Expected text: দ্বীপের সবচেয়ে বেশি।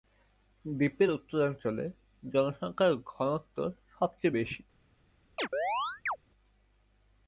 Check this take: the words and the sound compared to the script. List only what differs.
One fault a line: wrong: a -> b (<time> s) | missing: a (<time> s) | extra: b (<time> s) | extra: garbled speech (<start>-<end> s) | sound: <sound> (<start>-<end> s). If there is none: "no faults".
extra: উত্তরাঞ্চলে জনসংখ্যার ঘনত্ব (1.1 s)
sound: chirp (5.4-6.2 s)